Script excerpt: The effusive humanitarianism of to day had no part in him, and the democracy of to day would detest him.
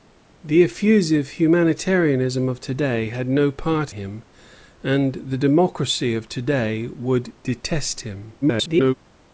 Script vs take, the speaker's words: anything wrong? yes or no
yes